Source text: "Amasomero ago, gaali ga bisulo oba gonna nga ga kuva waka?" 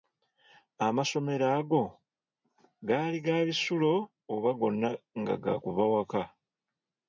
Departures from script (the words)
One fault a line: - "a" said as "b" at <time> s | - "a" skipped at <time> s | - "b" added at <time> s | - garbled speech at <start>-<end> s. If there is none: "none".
none